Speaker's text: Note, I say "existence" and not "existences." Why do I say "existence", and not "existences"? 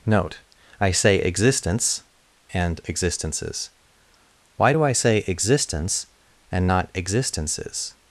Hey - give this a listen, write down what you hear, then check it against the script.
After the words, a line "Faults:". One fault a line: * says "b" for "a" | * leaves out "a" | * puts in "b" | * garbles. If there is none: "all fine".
Note, I say "existence" and "existences." Why do I say "existence", and not "existences"?
Faults:
* leaves out "not"